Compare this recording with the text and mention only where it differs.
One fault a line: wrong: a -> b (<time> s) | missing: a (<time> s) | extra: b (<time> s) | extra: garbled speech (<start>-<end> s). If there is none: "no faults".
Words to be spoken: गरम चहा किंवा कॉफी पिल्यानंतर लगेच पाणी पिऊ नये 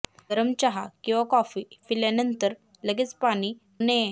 missing: पिऊ (3.5 s)